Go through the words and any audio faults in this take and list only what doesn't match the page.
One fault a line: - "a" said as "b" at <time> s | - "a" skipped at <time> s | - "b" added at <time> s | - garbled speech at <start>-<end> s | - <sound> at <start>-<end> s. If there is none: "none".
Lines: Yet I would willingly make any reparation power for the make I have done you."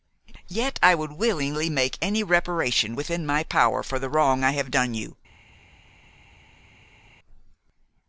- "within my" added at 3.0 s
- "make" said as "wrong" at 4.1 s